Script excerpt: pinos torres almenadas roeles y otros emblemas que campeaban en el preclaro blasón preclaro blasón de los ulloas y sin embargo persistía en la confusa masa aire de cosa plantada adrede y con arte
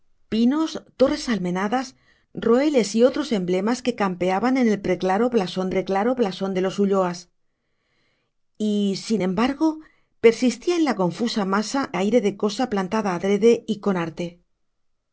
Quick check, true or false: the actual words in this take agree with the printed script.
true